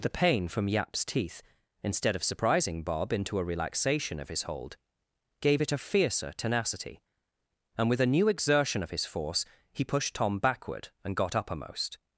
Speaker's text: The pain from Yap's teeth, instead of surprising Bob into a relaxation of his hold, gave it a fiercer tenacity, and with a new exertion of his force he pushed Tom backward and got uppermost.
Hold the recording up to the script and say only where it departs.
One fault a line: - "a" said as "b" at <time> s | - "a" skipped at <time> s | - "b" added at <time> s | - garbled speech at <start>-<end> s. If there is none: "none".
none